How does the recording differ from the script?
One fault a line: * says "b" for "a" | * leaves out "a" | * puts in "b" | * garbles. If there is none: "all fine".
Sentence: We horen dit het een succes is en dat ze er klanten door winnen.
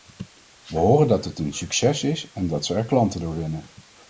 * says "dat" for "dit"